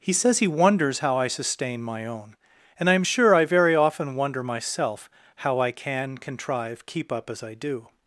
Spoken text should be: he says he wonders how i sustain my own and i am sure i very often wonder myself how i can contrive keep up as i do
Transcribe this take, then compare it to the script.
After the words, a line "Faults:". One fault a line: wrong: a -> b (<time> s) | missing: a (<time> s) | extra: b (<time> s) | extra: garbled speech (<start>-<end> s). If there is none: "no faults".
he says he wonders how i sustain my own and i am sure i very often wonder myself how i can contrive keep up as i do
Faults:
no faults